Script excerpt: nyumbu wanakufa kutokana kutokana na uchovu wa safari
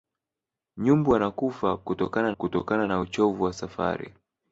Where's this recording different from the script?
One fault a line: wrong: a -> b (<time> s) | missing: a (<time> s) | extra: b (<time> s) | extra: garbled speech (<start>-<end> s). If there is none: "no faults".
no faults